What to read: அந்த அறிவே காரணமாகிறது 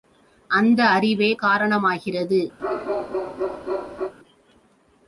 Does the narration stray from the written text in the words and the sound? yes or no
yes